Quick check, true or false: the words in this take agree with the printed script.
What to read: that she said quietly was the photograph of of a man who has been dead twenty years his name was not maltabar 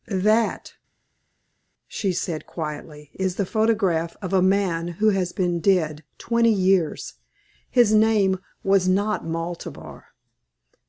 false